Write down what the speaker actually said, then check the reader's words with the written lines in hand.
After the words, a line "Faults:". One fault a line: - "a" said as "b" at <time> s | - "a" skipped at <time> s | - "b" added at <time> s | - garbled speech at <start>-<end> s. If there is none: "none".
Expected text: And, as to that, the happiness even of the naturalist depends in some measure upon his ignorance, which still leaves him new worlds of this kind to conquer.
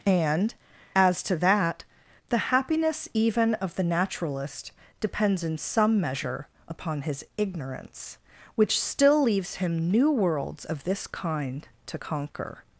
And, as to that, the happiness even of the naturalist depends in some measure upon his ignorance, which still leaves him new worlds of this kind to conquer.
Faults:
none